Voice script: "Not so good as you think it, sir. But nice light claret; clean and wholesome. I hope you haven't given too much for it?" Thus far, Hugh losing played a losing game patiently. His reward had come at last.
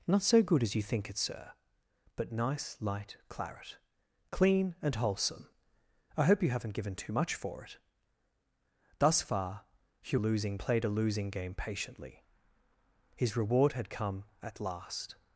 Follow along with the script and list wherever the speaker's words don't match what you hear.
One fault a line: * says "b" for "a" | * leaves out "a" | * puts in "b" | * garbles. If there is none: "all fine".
all fine